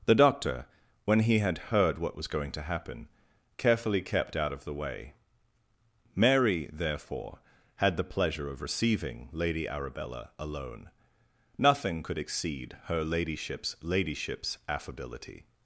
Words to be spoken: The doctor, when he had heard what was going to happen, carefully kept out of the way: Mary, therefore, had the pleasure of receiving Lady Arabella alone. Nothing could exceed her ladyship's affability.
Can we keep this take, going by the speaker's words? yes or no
no